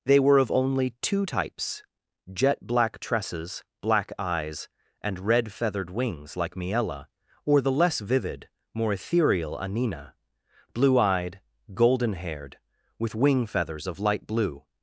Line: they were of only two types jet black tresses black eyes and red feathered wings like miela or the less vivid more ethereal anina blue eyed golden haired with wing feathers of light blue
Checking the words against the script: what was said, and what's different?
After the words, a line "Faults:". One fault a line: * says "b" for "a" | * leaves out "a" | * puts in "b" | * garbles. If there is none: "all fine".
they were of only two types jet black tresses black eyes and red feathered wings like miela or the less vivid more ethereal anina blue eyed golden haired with wing feathers of light blue
Faults:
all fine